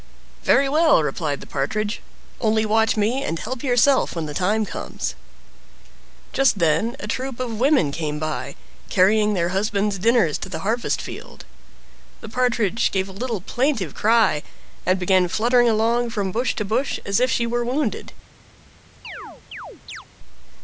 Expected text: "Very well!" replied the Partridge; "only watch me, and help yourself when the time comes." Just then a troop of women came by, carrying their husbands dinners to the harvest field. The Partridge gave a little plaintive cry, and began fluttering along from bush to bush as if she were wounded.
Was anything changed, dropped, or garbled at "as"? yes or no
no